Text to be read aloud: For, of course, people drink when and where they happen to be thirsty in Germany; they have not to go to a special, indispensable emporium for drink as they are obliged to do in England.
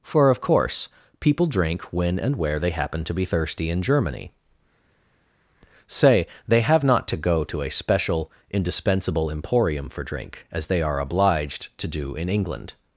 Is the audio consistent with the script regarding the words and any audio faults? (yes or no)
no